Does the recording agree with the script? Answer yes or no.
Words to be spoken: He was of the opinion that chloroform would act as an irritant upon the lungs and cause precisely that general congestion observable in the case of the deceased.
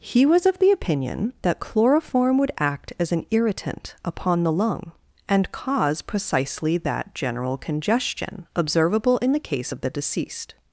no